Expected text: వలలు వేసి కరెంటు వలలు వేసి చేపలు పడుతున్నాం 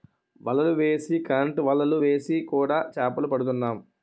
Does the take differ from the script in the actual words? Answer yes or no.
yes